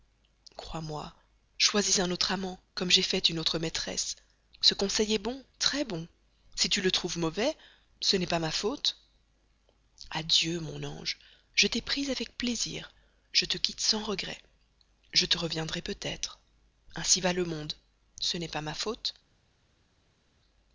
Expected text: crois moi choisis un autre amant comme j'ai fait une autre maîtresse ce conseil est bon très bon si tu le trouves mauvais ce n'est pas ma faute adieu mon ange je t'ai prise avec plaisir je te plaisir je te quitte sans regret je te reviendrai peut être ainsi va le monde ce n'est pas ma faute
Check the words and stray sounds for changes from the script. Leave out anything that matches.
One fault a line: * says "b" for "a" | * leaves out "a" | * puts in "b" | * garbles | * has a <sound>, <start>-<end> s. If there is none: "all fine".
* leaves out "plaisir je te"